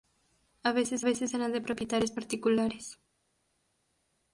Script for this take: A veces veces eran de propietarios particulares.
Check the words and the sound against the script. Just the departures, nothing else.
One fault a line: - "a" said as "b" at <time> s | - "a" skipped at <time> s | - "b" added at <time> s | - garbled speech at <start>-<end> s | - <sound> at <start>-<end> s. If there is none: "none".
none